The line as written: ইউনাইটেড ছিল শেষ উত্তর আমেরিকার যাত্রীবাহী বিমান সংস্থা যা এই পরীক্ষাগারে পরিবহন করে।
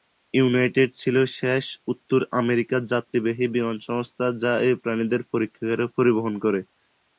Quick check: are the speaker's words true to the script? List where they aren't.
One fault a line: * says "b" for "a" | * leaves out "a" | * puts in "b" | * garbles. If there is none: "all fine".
* puts in "প্রাণীদের"